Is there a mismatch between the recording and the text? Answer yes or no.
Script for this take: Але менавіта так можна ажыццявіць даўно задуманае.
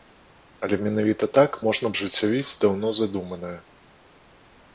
no